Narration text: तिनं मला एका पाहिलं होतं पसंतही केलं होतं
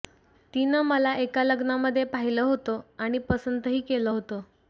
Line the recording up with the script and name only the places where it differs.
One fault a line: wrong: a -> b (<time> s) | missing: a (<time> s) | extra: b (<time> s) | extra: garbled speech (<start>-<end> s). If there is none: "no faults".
extra: लग्नामध्ये (1.4 s)
extra: आणि (3.0 s)